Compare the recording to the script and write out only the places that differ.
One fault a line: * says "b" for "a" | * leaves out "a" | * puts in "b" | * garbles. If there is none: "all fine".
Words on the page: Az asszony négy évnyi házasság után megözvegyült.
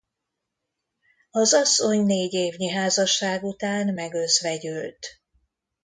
all fine